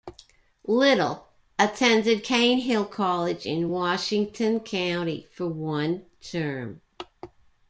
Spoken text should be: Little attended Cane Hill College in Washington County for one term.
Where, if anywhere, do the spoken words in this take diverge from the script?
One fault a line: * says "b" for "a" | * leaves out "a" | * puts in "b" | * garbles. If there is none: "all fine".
all fine